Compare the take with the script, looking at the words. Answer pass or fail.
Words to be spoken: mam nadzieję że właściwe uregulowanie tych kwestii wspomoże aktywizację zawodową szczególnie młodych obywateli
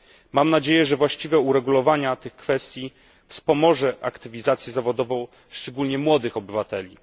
pass